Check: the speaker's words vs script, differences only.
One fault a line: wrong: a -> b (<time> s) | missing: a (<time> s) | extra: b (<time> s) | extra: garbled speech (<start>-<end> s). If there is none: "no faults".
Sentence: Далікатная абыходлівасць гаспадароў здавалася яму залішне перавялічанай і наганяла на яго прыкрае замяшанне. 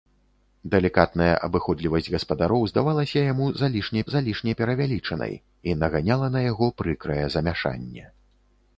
extra: залішне (4.1 s)